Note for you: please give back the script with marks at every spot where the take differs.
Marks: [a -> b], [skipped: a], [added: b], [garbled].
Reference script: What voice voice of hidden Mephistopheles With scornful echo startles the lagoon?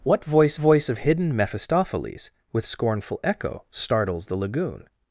What voice voice of hidden Mephistopheles With scornful echo startles the lagoon?